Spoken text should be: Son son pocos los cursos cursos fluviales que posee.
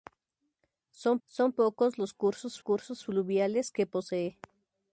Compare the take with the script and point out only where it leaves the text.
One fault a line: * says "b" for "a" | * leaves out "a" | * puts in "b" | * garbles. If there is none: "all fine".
all fine